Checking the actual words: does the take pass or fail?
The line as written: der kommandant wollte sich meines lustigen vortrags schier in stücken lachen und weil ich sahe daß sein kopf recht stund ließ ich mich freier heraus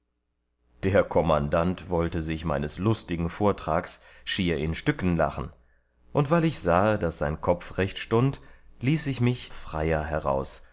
pass